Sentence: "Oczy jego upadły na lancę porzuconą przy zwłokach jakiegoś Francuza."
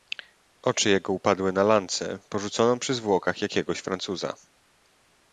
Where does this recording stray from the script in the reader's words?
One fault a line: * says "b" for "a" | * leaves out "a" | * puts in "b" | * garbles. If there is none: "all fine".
all fine